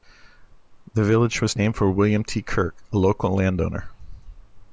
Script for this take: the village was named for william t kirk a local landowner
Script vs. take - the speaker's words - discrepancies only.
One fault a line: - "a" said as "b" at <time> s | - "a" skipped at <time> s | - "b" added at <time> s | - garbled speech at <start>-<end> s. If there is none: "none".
none